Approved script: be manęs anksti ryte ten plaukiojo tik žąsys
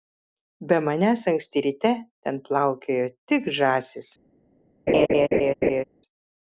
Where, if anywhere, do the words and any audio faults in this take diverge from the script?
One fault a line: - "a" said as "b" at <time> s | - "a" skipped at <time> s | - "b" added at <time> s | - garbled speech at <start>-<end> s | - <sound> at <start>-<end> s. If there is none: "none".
- laugh at 4.9-5.8 s